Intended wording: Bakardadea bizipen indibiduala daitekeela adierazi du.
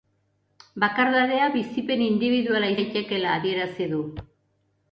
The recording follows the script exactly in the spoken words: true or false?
true